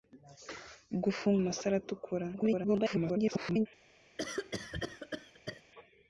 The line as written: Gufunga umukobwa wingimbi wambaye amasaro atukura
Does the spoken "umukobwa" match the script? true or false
false